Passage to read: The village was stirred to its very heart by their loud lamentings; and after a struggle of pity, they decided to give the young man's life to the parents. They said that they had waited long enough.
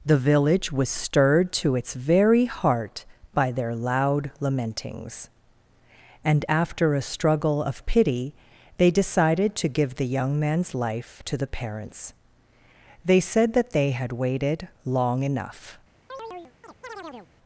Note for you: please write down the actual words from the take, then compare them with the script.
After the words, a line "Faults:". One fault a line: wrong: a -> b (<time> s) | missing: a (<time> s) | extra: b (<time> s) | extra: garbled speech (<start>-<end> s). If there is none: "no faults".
The village was stirred to its very heart by their loud lamentings; and after a struggle of pity, they decided to give the young man's life to the parents. They said that they had waited long enough.
Faults:
no faults